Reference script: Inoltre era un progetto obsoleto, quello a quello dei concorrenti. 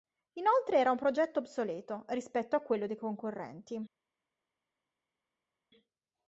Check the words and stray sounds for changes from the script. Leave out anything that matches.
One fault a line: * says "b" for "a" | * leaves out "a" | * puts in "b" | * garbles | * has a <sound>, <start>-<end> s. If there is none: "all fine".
* says "rispetto" for "quello"